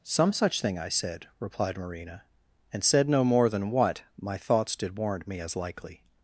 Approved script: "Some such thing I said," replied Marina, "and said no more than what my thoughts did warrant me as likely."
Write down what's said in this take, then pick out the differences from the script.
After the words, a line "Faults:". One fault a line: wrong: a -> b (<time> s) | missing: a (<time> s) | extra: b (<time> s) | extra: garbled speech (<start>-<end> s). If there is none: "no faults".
"Some such thing I said," replied Marina, "and said no more than what my thoughts did warrant me as likely."
Faults:
no faults